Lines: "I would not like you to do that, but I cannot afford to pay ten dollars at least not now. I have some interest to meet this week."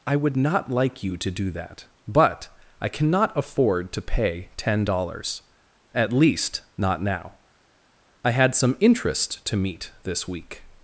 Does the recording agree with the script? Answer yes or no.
no